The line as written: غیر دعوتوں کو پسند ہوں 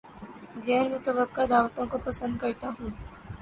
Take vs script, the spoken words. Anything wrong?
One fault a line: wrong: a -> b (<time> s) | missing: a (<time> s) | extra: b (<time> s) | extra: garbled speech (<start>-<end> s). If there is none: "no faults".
extra: متوقع (0.9 s)
extra: کرتا (2.4 s)